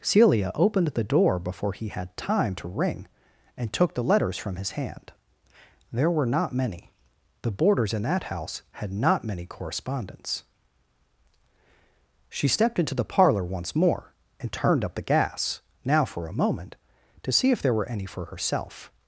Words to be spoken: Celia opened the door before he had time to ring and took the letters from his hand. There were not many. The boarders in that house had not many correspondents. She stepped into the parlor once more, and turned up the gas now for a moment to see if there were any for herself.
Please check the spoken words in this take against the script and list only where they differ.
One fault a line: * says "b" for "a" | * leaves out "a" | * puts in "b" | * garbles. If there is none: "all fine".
all fine